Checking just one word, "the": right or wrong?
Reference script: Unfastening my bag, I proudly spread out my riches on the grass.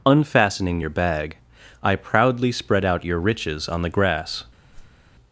right